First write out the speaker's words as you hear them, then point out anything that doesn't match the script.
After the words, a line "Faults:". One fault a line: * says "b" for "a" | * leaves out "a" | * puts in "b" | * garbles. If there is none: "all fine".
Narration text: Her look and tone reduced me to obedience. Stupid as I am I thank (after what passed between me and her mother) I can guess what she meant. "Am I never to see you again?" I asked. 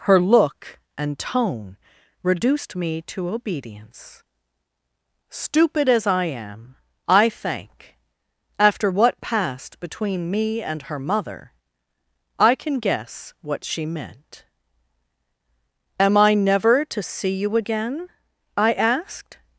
Her look and tone reduced me to obedience. Stupid as I am I thank (after what passed between me and her mother) I can guess what she meant. "Am I never to see you again?" I asked.
Faults:
all fine